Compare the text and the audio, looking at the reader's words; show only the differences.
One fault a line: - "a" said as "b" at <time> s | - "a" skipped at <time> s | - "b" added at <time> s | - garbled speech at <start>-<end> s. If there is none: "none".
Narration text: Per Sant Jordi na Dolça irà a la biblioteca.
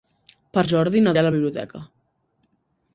- "Sant" skipped at 0.6 s
- "Dolça" skipped at 1.1 s